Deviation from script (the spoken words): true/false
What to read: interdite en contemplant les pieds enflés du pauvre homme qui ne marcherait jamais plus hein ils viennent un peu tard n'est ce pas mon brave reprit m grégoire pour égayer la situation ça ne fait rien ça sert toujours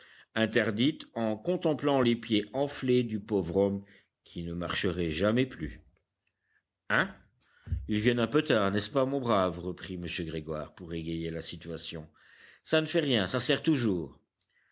false